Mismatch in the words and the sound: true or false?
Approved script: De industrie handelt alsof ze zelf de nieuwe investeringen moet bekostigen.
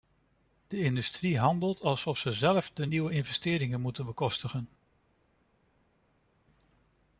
false